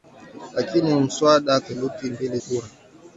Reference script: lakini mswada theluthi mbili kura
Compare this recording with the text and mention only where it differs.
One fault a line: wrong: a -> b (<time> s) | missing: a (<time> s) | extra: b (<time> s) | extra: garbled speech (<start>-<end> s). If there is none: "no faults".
no faults